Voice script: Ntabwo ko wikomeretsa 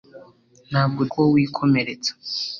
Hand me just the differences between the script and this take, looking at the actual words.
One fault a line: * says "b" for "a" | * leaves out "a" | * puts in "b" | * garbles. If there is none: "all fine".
all fine